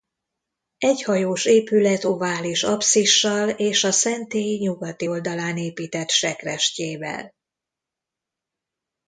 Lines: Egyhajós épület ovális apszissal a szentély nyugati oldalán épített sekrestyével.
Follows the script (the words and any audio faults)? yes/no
no